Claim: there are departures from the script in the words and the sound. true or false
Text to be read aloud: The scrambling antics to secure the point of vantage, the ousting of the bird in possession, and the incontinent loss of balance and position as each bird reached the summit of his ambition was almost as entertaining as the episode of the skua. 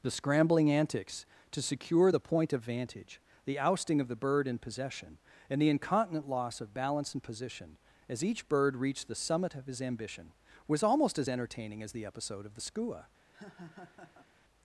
true